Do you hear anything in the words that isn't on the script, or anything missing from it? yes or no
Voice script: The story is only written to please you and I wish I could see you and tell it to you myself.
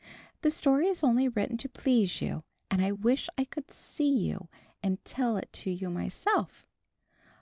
no